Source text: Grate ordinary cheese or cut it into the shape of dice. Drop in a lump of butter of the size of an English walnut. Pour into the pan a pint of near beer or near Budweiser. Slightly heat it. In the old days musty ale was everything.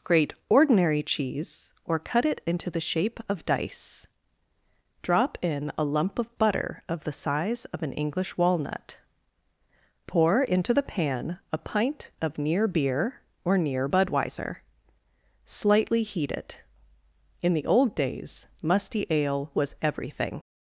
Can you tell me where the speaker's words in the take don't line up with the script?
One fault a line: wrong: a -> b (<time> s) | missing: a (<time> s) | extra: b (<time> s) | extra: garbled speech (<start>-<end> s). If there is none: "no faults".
no faults